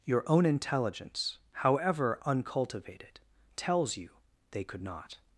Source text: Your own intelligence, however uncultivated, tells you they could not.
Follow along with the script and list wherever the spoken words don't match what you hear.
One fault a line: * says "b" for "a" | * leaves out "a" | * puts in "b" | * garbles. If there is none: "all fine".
all fine